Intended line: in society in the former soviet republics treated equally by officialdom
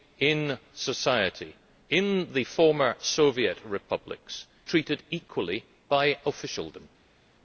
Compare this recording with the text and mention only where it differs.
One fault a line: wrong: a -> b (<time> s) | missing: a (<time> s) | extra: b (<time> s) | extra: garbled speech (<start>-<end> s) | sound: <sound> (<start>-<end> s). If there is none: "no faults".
no faults